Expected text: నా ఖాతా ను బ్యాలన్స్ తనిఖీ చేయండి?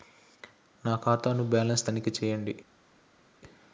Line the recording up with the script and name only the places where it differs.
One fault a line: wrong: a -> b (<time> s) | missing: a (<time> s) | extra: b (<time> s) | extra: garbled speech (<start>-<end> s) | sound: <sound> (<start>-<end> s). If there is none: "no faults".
no faults